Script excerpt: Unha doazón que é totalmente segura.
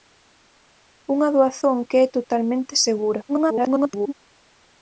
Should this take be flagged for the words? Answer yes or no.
yes